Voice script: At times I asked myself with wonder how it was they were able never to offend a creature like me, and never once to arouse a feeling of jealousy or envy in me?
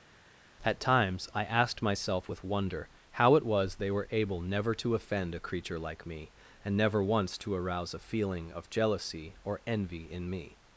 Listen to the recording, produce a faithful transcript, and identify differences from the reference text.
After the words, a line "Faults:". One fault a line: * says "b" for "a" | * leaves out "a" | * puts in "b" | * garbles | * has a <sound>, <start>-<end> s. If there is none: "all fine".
At times I asked myself with wonder how it was they were able never to offend a creature like me, and never once to arouse a feeling of jealousy or envy in me?
Faults:
all fine